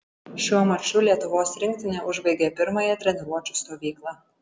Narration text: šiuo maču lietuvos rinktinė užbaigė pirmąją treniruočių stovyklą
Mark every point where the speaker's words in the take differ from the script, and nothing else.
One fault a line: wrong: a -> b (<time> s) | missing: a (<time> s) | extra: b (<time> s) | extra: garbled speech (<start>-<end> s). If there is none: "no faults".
no faults